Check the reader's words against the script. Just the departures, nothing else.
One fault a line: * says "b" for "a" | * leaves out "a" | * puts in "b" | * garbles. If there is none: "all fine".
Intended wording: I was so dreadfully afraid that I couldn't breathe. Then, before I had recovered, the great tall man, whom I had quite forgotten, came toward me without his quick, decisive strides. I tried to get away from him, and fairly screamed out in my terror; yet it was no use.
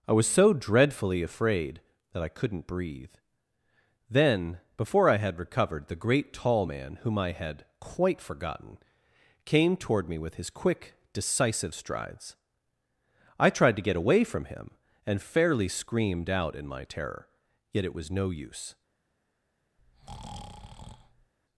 * says "with" for "without"